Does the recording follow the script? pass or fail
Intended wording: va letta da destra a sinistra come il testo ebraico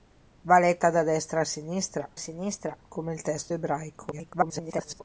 fail